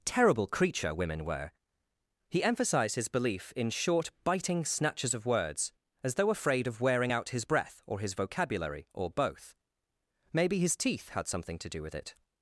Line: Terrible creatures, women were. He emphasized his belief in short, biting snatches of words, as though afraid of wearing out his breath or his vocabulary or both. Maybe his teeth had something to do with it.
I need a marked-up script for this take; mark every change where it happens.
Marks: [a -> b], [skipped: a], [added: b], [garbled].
Terrible [creatures, -> creature] women were. He emphasized his belief in short, biting snatches of words, as though afraid of wearing out his breath or his vocabulary or both. Maybe his teeth had something to do with it.